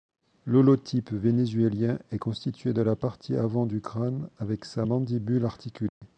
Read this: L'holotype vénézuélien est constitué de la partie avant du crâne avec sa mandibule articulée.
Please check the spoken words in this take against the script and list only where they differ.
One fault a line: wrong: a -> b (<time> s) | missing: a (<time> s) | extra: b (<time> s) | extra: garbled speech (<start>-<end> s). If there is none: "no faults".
no faults